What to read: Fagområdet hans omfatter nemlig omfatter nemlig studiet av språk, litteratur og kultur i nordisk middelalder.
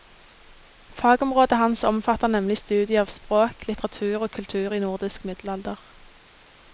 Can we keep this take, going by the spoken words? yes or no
no